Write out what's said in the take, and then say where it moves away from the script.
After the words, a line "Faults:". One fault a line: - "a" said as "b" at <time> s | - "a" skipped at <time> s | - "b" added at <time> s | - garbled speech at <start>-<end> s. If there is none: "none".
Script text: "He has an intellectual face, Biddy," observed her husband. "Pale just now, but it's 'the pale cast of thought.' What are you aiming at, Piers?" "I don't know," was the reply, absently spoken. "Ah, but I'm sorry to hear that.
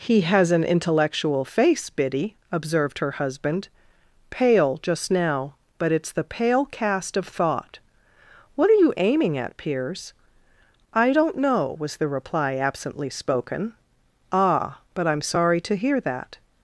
"He has an intellectual face, Biddy," observed her husband. "Pale just now, but it's 'the pale cast of thought.' What are you aiming at, Piers?" "I don't know," was the reply, absently spoken. "Ah, but I'm sorry to hear that.
Faults:
none